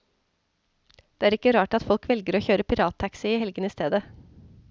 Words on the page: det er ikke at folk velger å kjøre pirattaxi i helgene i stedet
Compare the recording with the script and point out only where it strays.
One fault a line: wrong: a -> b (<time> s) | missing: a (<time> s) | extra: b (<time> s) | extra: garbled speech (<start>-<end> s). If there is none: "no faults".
extra: rart (1.6 s)